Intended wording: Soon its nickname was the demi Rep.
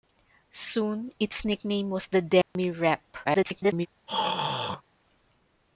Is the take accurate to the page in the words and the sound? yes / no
no